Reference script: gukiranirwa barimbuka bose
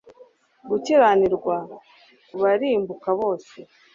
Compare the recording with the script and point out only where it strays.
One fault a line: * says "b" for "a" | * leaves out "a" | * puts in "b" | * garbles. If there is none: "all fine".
all fine